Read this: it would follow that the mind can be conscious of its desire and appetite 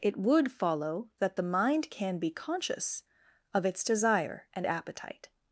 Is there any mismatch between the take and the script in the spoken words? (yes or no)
no